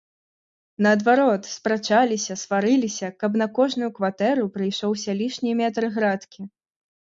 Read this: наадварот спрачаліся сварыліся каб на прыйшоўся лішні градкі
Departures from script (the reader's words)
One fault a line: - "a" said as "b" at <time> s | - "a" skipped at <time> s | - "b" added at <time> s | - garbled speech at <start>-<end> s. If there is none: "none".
- "кожную кватэру" added at 3.6 s
- "метр" added at 5.6 s